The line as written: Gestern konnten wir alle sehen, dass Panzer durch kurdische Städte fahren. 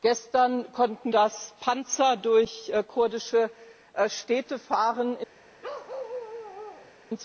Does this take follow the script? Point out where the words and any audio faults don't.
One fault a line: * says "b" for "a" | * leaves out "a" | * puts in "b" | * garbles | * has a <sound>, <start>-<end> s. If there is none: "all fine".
* leaves out "wir alle sehen"
* has a bark, 5.6-6.9 s